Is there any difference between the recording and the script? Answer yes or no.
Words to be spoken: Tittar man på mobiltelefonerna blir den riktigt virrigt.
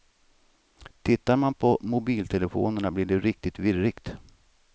yes